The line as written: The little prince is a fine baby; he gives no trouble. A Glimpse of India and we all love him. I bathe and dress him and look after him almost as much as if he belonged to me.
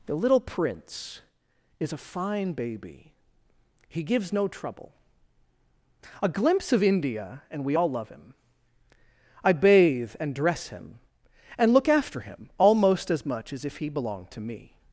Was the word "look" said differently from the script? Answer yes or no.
no